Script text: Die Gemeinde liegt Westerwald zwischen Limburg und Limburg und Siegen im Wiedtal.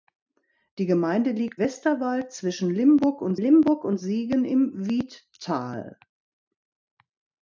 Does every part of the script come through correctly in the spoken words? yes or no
yes